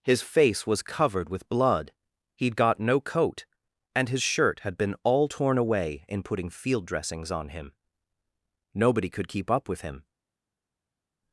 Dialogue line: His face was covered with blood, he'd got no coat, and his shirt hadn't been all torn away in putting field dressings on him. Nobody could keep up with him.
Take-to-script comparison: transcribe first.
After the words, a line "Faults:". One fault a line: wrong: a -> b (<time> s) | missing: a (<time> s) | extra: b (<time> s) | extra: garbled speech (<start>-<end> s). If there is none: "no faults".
His face was covered with blood, he'd got no coat, and his shirt had been all torn away in putting field dressings on him. Nobody could keep up with him.
Faults:
wrong: hadn't -> had (4.6 s)